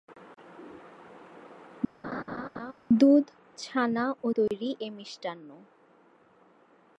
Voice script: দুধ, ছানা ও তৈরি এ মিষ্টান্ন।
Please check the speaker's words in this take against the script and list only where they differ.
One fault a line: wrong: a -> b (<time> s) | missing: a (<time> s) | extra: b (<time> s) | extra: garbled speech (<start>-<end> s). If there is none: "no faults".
no faults